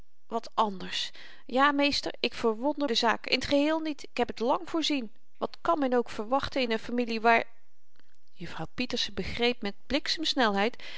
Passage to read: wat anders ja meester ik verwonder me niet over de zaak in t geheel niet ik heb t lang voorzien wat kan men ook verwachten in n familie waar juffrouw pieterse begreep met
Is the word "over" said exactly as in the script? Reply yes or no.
no